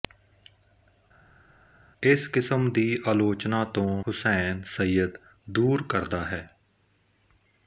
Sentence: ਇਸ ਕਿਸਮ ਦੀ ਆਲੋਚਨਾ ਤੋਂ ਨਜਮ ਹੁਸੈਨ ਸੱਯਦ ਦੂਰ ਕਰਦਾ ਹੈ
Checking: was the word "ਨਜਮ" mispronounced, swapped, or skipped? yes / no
yes